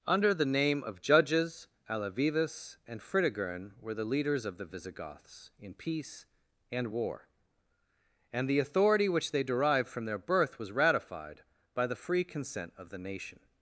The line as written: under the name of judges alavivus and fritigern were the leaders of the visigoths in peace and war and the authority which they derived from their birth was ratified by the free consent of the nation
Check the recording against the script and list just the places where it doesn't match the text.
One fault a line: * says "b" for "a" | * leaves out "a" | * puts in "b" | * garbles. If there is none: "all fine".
all fine